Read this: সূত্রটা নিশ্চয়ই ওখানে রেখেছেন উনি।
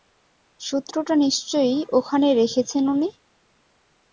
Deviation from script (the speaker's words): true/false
false